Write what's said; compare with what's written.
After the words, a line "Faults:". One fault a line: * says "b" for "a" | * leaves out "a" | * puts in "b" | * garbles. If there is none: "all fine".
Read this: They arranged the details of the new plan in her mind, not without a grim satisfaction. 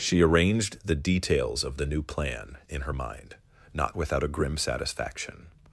She arranged the details of the new plan in her mind, not without a grim satisfaction.
Faults:
* says "She" for "They"